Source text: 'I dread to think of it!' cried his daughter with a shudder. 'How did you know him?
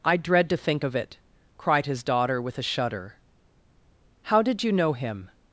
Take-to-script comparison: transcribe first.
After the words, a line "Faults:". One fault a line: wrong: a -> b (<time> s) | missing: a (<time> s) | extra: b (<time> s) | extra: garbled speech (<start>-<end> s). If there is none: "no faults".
'I dread to think of it!' cried his daughter with a shudder. 'How did you know him?
Faults:
no faults